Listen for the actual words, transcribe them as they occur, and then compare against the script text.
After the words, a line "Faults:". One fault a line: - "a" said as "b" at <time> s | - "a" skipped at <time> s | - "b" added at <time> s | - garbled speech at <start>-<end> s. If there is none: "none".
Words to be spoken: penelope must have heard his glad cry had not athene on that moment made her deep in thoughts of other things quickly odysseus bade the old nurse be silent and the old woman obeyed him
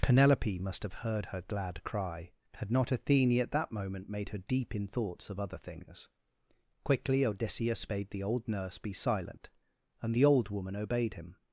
penelope must have heard her glad cry had not athene at that moment made her deep in thoughts of other things quickly odysseus bade the old nurse be silent and the old woman obeyed him
Faults:
- "his" said as "her" at 1.3 s
- "on" said as "at" at 3.4 s